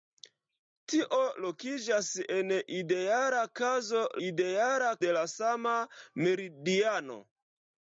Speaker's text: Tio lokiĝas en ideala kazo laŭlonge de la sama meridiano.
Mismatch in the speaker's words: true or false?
true